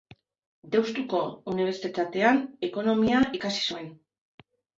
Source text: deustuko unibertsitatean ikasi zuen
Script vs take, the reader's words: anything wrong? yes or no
yes